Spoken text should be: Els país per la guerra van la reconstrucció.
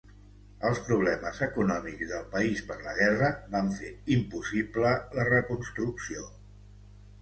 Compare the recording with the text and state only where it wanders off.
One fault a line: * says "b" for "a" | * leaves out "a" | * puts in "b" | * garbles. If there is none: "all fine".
* puts in "problemes econòmics del"
* puts in "fer impossible"